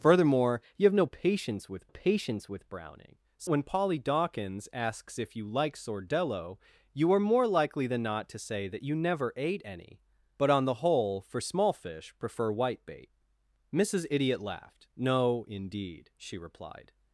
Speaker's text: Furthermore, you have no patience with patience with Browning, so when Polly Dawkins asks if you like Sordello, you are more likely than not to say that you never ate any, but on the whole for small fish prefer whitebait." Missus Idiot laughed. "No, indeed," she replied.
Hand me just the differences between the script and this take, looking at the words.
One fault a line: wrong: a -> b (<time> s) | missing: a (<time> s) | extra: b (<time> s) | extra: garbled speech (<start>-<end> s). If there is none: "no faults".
no faults